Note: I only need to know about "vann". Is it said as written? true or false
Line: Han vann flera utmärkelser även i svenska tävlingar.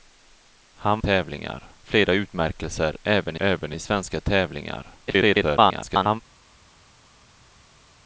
false